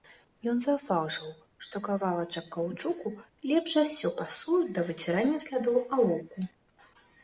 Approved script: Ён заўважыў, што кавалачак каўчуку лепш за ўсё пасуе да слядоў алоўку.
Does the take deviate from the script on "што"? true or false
false